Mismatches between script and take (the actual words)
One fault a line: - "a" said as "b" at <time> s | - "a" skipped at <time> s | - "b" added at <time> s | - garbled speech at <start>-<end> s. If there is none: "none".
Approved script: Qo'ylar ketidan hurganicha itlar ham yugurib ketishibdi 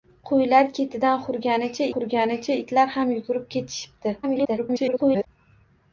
- "hurganicha" added at 1.9 s
- garbled speech at 4.2-5.3 s